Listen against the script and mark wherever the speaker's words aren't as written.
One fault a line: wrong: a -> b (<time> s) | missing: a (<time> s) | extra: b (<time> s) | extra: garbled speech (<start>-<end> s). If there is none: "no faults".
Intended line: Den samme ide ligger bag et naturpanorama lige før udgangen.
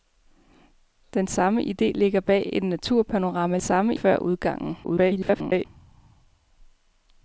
wrong: lige -> samme (3.6 s)
extra: garbled speech (4.8-5.7 s)